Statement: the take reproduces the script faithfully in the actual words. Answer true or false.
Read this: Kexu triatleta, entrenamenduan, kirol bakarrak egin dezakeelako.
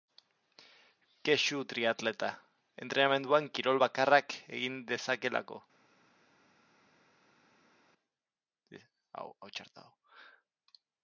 true